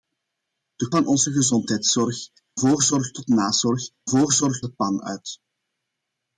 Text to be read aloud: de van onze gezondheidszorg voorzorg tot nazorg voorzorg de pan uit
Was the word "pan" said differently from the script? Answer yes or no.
no